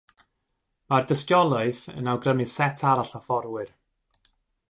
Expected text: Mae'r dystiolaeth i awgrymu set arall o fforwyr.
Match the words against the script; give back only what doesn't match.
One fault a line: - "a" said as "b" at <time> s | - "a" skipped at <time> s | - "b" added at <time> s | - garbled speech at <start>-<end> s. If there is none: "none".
- "i" said as "yn" at 1.9 s